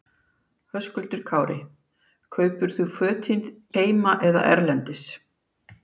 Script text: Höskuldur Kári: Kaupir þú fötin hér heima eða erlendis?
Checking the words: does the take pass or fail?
fail